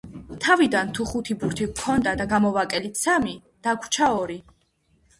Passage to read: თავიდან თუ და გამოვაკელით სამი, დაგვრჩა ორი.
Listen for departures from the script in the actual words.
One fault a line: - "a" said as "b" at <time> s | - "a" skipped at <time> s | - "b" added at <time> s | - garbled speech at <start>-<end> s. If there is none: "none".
- "ხუთი ბურთი გვქონდა" added at 1.1 s